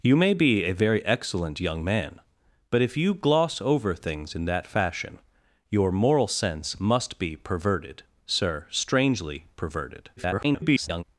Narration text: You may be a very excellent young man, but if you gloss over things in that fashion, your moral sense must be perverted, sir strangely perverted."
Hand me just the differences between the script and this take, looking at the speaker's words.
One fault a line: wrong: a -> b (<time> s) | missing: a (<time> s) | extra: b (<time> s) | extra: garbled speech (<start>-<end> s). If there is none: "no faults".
extra: garbled speech (10.2-11.0 s)